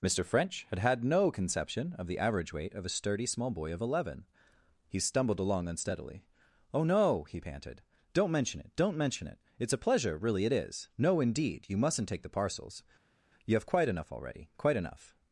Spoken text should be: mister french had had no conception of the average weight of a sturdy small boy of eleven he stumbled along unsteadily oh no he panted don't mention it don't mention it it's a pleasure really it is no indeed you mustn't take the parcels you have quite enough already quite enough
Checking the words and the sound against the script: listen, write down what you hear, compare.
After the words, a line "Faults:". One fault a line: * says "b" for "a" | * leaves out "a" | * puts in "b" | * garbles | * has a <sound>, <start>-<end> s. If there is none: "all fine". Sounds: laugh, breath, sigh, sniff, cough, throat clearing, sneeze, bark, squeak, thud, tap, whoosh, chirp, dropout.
mister french had had no conception of the average weight of a sturdy small boy of eleven he stumbled along unsteadily oh no he panted don't mention it don't mention it it's a pleasure really it is no indeed you mustn't take the parcels you have quite enough already quite enough
Faults:
all fine